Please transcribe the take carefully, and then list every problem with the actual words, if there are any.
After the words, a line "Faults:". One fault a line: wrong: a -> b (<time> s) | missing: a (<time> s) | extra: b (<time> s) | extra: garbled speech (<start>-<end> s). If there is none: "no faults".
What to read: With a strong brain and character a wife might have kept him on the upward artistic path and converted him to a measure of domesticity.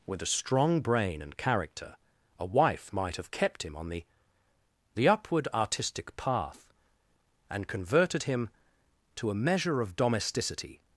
With a strong brain and character a wife might have kept him on the the upward artistic path and converted him to a measure of domesticity.
Faults:
extra: the (5.0 s)